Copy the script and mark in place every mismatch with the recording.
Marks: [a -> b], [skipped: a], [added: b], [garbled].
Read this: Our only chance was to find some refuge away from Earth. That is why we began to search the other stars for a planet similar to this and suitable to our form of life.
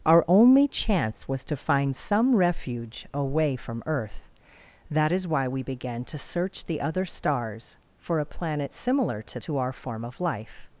Our only chance was to find some refuge away from Earth. That is why we began to search the other stars for a planet similar to [skipped: this and suitable] to our form of life.